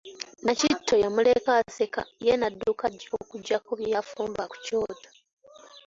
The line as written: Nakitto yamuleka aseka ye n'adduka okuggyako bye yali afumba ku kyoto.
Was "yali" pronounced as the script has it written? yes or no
no